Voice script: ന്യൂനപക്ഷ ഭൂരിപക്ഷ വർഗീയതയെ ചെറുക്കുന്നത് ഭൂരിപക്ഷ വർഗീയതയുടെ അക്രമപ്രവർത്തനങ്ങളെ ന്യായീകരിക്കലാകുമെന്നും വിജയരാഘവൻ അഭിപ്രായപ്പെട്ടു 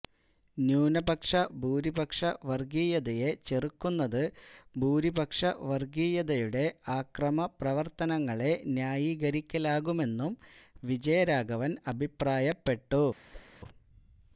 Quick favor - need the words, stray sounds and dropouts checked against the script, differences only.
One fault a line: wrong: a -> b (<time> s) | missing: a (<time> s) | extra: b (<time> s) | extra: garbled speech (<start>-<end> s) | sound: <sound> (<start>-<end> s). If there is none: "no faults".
sound: whoosh (13.3-13.6 s)